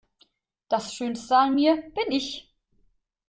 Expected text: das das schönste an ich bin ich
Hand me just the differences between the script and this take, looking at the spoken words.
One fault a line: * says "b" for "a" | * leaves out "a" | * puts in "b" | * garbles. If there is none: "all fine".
* leaves out "das"
* says "mir" for "ich"